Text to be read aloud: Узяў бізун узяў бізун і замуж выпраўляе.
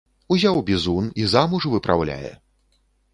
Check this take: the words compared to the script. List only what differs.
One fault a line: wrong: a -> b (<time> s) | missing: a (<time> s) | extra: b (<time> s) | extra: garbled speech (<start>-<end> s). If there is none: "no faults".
missing: узяў бізун (1.1 s)